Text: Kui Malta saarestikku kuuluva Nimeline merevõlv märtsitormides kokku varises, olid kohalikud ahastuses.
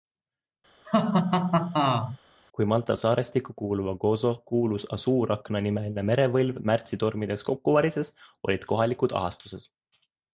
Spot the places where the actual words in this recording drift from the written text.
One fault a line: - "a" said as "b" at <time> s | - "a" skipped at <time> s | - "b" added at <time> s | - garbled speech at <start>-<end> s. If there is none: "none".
- "Gozo kuulus Asuurakna" added at 4.0 s